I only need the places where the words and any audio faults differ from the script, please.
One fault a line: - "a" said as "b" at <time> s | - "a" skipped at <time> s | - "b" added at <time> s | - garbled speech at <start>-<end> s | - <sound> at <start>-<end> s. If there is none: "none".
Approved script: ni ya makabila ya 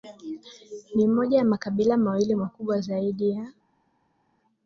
- "moja" added at 1.1 s
- "mawili makubwa zaidi" added at 2.0 s